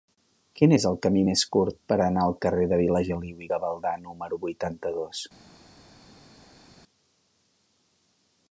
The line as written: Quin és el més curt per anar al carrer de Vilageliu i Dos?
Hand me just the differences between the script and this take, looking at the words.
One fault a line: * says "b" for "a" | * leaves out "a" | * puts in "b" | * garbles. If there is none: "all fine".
* puts in "camí"
* puts in "Gavaldà número vuitanta"